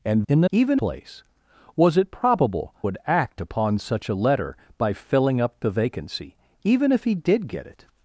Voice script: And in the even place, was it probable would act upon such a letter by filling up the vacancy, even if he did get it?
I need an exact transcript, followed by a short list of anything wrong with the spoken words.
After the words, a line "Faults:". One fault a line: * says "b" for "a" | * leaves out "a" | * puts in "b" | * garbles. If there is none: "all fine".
And in the even place, was it probable would act upon such a letter by filling up the vacancy, even if he did get it?
Faults:
all fine